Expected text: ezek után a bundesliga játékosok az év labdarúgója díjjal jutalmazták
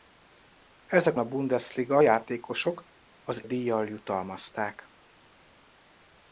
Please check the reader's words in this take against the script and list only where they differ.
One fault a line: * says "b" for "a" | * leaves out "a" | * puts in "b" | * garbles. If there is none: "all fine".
* leaves out "után"
* leaves out "év labdarúgója"